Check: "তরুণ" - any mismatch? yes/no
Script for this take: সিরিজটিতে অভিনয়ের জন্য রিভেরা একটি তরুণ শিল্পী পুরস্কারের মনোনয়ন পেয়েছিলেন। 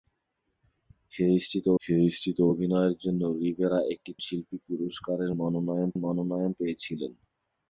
yes